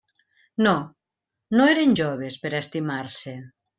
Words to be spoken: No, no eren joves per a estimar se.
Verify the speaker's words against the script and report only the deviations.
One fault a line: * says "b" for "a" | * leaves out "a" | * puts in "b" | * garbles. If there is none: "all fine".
all fine